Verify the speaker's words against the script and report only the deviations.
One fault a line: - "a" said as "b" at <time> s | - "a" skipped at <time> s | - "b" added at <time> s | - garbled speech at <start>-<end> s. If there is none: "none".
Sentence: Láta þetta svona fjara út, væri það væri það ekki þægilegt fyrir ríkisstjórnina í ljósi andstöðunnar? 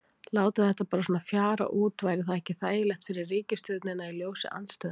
- "bara" added at 0.9 s
- "væri það" skipped at 2.4 s